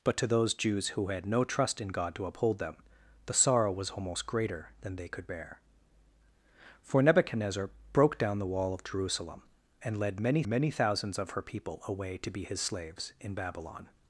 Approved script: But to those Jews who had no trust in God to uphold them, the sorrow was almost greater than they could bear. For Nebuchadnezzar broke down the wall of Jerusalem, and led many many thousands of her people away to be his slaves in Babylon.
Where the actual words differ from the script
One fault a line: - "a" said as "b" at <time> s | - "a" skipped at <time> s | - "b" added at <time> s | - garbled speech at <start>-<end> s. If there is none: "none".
none